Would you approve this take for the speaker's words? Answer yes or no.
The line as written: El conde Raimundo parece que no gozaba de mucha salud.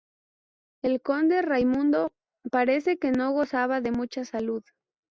yes